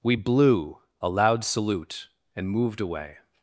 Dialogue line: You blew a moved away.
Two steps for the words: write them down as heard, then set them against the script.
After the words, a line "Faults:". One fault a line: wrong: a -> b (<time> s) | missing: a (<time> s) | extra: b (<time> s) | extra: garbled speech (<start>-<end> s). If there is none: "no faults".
We blew a loud salute and moved away.
Faults:
wrong: You -> We (0.0 s)
extra: loud salute and (1.1 s)